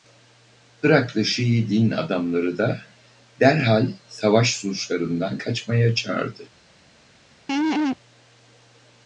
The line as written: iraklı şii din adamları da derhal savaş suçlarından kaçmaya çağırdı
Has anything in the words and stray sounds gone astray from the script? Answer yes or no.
yes